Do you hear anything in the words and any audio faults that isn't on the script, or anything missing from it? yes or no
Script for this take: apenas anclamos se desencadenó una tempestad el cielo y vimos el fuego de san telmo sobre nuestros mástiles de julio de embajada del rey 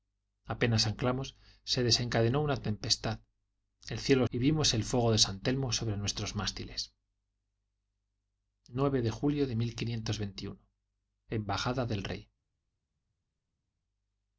no